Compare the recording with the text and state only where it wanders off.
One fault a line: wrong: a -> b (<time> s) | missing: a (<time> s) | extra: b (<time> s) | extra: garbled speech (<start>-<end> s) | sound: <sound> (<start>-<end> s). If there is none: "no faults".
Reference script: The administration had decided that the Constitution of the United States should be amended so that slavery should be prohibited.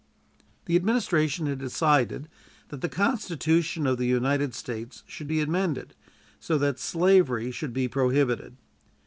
no faults